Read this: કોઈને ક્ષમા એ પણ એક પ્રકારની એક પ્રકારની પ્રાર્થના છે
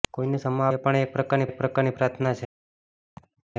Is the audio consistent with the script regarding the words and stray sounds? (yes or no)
no